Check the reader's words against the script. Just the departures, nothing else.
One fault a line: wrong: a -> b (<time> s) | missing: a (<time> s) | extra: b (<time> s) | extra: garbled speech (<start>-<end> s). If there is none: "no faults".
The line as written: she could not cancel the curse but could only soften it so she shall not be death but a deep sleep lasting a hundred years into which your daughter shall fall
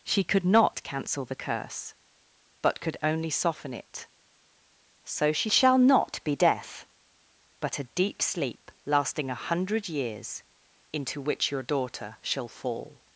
no faults